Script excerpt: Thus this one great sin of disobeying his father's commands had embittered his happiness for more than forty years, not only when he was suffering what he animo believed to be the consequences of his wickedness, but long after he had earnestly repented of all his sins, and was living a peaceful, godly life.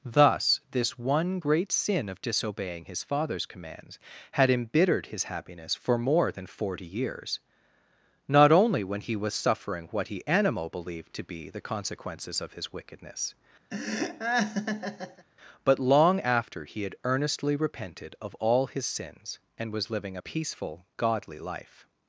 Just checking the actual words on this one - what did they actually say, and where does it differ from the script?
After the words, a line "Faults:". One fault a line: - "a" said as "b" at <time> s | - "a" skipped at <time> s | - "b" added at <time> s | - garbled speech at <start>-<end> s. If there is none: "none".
Thus this one great sin of disobeying his father's commands had embittered his happiness for more than forty years, not only when he was suffering what he animo believed to be the consequences of his wickedness, but long after he had earnestly repented of all his sins, and was living a peaceful, godly life.
Faults:
none